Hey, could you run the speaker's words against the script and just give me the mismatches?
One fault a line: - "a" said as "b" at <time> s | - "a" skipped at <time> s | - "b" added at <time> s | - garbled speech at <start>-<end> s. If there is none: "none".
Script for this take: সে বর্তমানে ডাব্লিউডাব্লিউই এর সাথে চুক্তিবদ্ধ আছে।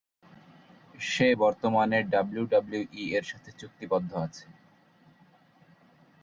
none